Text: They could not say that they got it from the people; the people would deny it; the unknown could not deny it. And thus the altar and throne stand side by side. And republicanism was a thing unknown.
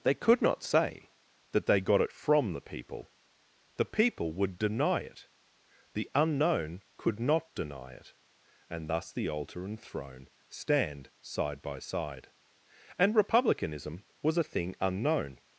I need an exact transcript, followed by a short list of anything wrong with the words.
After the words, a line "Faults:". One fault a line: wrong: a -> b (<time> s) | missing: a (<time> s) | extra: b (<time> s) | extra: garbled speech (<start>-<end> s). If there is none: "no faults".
They could not say that they got it from the people; the people would deny it; the unknown could not deny it. And thus the altar and throne stand side by side. And republicanism was a thing unknown.
Faults:
no faults